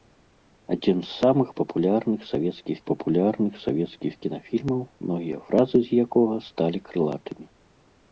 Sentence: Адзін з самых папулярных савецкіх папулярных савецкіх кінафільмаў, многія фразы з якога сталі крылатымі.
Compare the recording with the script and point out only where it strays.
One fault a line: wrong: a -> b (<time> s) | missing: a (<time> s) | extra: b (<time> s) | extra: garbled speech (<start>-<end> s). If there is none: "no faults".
no faults